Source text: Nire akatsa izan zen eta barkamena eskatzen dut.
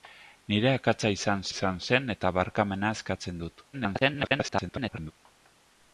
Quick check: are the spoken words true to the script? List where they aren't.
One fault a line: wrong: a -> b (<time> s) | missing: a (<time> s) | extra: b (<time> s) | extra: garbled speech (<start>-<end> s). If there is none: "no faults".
extra: izan (1.5 s)
extra: garbled speech (3.7-5.1 s)